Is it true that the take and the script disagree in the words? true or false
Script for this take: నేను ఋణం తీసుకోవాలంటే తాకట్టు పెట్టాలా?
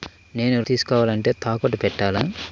true